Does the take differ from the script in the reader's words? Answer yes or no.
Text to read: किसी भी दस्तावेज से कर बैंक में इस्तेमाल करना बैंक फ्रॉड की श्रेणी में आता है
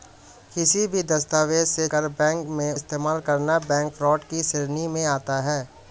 no